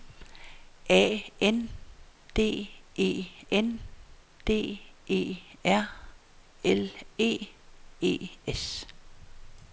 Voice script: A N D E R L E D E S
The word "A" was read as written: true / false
true